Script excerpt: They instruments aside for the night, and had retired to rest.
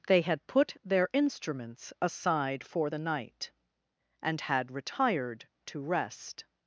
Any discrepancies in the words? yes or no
yes